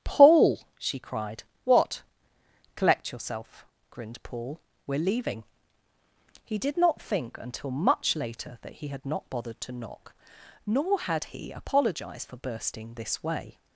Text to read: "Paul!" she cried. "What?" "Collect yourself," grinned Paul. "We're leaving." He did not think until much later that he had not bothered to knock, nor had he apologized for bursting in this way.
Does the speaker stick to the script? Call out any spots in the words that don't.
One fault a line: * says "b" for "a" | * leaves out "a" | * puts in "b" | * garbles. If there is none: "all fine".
* leaves out "in"